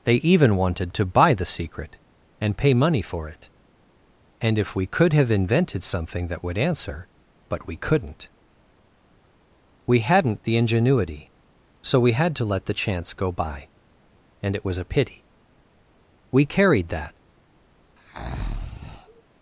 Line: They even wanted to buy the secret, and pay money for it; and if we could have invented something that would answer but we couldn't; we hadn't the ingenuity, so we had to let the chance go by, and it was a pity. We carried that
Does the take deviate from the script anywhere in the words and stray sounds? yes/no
yes